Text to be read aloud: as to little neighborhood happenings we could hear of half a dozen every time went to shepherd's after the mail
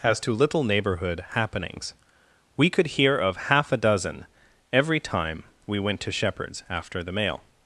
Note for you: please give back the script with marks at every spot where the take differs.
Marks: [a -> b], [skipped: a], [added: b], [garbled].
as to little neighborhood happenings we could hear of half a dozen every time [added: we] went to shepherd's after the mail